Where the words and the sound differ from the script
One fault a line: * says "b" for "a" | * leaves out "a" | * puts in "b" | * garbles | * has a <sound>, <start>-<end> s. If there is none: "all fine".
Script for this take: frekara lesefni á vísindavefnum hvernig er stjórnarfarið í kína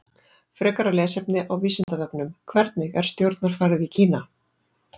* has a dropout, 1.8-1.9 s